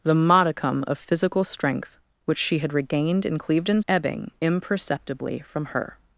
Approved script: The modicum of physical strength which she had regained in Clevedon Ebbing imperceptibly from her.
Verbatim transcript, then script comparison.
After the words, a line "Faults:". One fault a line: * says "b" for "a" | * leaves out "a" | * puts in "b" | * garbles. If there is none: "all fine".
The modicum of physical strength which she had regained in Clevedon Ebbing imperceptibly from her.
Faults:
all fine